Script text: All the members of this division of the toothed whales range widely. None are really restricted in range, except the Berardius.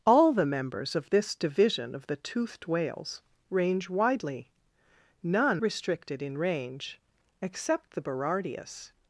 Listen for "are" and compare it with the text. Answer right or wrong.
wrong